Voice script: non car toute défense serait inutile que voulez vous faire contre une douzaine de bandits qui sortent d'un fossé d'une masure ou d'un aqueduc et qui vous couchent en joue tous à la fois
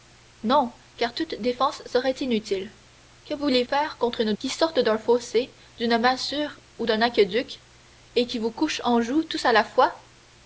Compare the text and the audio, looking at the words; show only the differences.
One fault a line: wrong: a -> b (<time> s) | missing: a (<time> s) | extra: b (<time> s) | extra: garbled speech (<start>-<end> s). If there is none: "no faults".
missing: vous (3.6 s)
missing: douzaine de bandits (4.3 s)